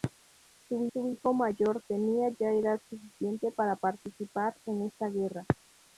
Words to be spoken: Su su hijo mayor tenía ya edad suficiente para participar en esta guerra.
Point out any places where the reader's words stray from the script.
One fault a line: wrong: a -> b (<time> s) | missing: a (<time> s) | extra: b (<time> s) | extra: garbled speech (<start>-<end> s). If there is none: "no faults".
no faults